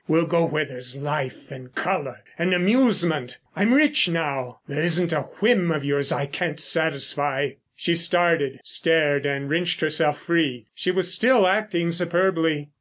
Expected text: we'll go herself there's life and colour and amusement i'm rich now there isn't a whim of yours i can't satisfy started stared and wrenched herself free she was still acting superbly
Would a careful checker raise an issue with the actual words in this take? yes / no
yes